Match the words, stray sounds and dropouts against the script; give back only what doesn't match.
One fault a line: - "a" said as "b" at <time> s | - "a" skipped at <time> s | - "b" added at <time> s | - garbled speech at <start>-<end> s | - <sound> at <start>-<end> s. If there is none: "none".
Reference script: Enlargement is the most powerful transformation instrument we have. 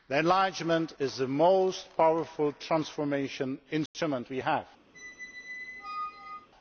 - dropout at 3.9-3.9 s
- squeak at 4.9-6.5 s